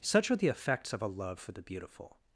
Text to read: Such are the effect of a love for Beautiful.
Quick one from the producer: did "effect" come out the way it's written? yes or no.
no